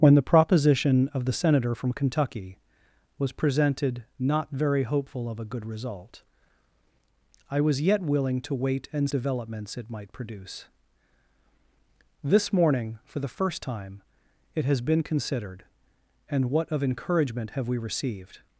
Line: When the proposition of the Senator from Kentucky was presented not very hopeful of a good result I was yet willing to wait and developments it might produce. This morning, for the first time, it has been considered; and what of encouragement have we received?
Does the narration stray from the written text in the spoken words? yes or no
no